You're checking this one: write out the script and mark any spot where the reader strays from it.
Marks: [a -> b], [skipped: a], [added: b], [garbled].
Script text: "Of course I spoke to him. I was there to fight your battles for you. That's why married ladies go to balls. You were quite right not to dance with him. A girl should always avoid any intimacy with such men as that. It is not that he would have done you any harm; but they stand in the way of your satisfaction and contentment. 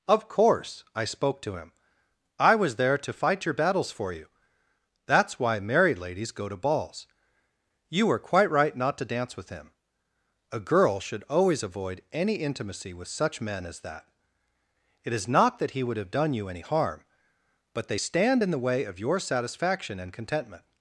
"Of course I spoke to him. I was there to fight your battles for you. That's why married ladies go to balls. You were quite right not to dance with him. A girl should always avoid any intimacy with such men as that. It is not that he would have done you any harm; but they stand in the way of your satisfaction and contentment.